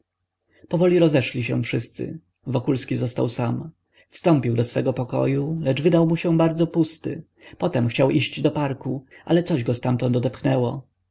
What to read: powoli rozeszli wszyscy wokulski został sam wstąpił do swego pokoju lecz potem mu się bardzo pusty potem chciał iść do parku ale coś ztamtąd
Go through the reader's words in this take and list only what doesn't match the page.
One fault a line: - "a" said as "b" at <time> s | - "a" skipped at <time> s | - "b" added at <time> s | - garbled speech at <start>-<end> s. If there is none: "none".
- "się" added at 1.4 s
- "potem" said as "wydał" at 5.8 s
- "go" added at 9.6 s